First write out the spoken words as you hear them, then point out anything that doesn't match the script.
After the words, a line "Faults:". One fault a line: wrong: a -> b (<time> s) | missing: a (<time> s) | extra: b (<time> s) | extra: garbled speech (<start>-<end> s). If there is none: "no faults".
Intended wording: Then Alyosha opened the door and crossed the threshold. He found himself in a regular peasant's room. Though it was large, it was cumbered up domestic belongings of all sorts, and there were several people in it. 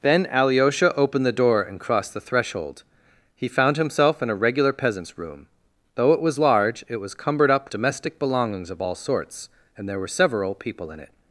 Then Alyosha opened the door and crossed the threshold. He found himself in a regular peasant's room. Though it was large, it was cumbered up domestic belongings of all sorts, and there were several people in it.
Faults:
no faults